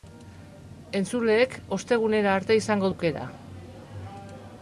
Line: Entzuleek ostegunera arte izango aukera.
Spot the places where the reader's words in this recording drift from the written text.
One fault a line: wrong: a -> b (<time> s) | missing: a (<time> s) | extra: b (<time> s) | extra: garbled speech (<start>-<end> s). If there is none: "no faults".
no faults